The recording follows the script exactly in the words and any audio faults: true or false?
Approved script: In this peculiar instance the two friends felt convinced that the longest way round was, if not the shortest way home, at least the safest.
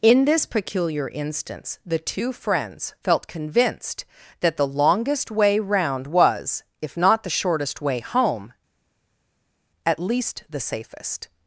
true